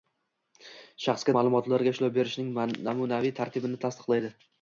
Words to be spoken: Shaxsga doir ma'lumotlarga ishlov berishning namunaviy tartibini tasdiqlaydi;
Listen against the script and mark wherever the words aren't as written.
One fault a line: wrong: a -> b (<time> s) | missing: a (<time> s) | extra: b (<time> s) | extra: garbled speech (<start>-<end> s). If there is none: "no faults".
missing: doir (1.4 s)